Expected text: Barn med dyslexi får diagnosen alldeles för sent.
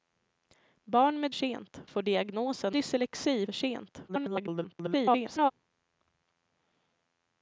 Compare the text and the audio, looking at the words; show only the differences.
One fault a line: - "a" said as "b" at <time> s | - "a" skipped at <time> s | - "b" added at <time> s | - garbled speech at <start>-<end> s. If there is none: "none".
- "dyslexi" said as "sent" at 1.3 s
- "alldeles" said as "dyslexi" at 2.7 s
- garbled speech at 4.1-5.5 s